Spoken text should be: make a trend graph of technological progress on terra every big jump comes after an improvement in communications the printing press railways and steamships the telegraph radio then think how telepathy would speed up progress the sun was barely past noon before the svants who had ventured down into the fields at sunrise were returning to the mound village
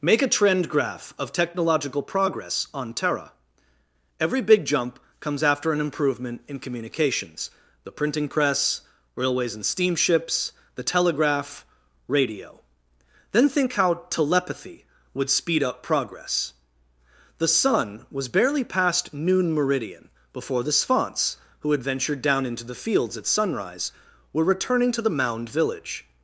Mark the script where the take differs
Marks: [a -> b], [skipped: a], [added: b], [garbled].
make a trend graph of technological progress on terra every big jump comes after an improvement in communications the printing press railways and steamships the telegraph radio then think how telepathy would speed up progress the sun was barely past noon [added: meridian] before the svants who had ventured down into the fields at sunrise were returning to the mound village